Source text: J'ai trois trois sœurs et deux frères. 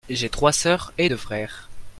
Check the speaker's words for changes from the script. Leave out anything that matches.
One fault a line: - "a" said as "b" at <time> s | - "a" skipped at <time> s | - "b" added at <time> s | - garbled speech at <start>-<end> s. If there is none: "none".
- "trois" skipped at 0.5 s